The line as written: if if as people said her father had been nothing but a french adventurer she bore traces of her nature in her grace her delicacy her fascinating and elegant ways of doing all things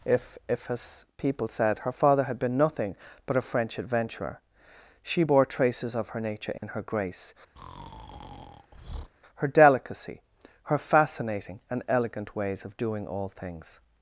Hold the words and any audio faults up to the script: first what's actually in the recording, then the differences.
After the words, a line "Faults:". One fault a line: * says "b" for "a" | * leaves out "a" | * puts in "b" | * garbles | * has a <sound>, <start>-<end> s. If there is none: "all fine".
if if as people said her father had been nothing but a french adventurer she bore traces of her nature in her grace her delicacy her fascinating and elegant ways of doing all things
Faults:
* has a dropout, 6.6-6.6 s
* has a breath, 7.6-9.1 s